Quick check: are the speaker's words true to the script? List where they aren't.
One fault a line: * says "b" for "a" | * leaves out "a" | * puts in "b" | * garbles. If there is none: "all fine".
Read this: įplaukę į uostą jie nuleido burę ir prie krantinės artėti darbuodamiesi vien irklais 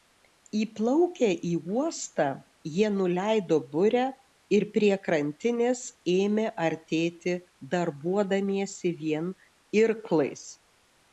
* puts in "ėmė"